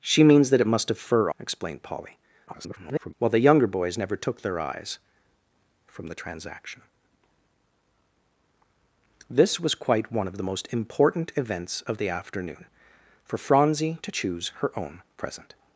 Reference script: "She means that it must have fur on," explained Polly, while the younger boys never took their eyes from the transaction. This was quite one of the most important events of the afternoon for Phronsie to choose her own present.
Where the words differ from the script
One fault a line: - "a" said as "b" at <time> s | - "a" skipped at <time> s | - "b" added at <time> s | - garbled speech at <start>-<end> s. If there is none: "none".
- "on" skipped at 1.3 s
- garbled speech at 2.5-3.1 s